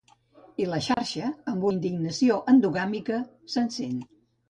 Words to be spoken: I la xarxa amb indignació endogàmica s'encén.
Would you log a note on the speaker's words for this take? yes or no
no